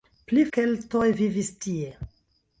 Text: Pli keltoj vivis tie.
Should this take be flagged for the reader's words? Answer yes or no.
no